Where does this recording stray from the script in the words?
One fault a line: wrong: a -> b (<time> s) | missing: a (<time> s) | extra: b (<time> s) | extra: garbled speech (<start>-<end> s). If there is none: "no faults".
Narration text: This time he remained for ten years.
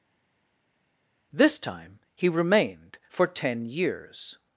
no faults